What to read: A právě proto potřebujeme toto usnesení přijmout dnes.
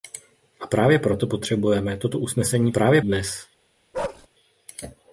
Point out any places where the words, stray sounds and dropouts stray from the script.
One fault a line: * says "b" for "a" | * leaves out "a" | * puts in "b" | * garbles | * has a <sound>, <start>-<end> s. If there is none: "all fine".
* says "právě" for "přijmout"
* has a bark, 3.9-4.3 s